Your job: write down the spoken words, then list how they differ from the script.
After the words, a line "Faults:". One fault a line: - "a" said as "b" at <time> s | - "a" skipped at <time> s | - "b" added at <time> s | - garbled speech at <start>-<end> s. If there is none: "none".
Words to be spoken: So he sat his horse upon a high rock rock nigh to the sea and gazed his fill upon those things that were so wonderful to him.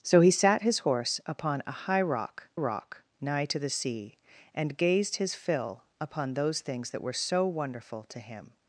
So he sat his horse upon a high rock rock nigh to the sea and gazed his fill upon those things that were so wonderful to him.
Faults:
none